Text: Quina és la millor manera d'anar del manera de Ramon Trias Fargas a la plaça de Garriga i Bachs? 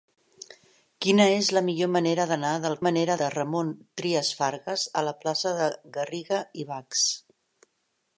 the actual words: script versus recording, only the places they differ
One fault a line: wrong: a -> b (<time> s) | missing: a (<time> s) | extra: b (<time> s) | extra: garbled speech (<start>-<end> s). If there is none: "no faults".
no faults